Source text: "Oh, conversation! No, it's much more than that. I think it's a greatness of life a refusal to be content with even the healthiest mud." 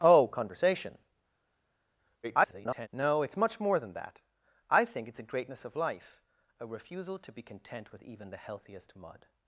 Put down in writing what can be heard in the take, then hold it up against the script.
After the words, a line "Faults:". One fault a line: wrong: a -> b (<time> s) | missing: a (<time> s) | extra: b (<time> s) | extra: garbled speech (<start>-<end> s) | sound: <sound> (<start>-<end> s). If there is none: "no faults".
"Oh, conversation! [garbled] No, it's much more than that. I think it's a greatness of life a refusal to be content with even the healthiest mud."
Faults:
extra: garbled speech (2.2-2.9 s)